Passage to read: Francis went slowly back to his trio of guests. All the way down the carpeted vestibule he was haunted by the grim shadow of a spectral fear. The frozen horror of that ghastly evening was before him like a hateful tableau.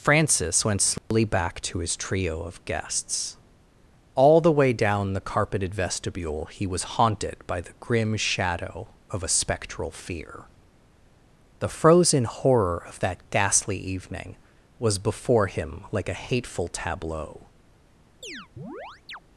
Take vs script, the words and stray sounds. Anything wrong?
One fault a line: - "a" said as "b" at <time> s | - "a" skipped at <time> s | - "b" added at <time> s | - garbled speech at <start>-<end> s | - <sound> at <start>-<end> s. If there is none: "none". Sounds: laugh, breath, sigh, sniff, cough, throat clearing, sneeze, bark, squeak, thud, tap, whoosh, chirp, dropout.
- dropout at 1.0-1.1 s
- chirp at 18.2-19.2 s